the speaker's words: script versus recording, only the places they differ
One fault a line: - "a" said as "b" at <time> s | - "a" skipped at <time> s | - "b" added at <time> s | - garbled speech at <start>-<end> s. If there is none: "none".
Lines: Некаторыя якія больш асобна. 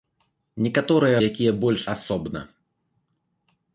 none